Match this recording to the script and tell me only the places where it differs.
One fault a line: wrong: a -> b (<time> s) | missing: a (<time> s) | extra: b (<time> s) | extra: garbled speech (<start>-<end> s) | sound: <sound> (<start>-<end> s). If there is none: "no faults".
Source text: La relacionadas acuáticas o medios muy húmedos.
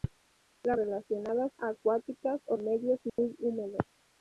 sound: dropout (3.1-3.2 s)